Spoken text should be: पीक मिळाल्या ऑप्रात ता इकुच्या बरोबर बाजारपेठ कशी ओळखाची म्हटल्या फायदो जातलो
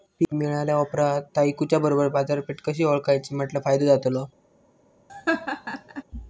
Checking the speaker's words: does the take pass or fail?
pass